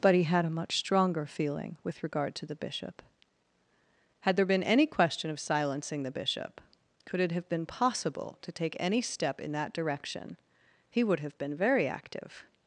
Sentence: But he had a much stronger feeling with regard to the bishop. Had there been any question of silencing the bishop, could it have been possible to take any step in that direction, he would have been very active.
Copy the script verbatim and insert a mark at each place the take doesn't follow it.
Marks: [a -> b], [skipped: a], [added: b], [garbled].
But he had a much stronger feeling with regard to the bishop. Had there been any question of silencing the bishop, could it have been possible to take any step in that direction, he would have been very active.